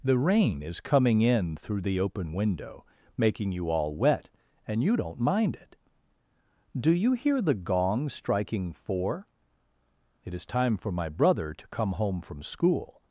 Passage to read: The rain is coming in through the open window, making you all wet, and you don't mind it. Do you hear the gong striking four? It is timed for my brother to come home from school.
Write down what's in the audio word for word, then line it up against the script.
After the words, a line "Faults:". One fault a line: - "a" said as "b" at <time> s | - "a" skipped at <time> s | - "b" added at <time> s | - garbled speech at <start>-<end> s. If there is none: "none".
The rain is coming in through the open window, making you all wet, and you don't mind it. Do you hear the gong striking four? It is time for my brother to come home from school.
Faults:
- "timed" said as "time" at 10.4 s